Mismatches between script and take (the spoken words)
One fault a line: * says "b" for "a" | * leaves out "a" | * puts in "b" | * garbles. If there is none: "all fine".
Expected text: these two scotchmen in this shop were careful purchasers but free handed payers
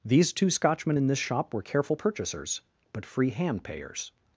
* says "hand" for "handed"